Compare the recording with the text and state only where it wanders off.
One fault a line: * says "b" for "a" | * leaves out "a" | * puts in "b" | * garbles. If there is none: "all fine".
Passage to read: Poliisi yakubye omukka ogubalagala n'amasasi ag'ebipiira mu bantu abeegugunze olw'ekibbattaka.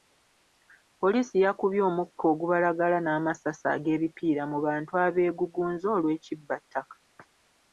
all fine